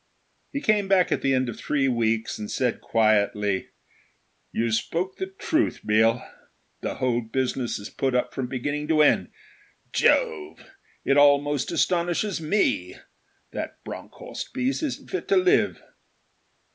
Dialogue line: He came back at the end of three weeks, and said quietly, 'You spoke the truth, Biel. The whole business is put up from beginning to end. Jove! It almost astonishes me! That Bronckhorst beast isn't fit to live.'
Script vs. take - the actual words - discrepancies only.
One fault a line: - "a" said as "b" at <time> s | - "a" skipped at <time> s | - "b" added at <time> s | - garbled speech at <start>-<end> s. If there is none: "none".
none